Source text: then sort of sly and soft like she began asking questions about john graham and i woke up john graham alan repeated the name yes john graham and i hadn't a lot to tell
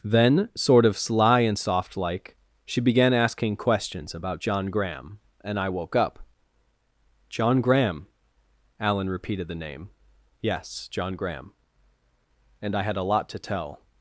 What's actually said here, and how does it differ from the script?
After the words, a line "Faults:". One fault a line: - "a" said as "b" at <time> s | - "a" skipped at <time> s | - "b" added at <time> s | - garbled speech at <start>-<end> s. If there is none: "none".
then sort of sly and soft like she began asking questions about john graham and i woke up john graham alan repeated the name yes john graham and i had a lot to tell
Faults:
- "hadn't" said as "had" at 12.8 s